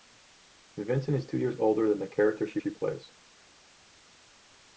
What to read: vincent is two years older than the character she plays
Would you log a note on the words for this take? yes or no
yes